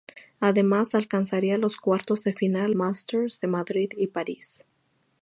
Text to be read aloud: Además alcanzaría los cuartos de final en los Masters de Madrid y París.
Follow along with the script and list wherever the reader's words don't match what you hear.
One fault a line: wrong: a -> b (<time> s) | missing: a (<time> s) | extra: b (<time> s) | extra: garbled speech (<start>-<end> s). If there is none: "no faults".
missing: en los (2.7 s)